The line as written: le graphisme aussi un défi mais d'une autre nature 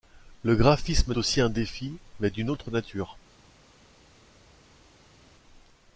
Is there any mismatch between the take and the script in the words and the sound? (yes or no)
no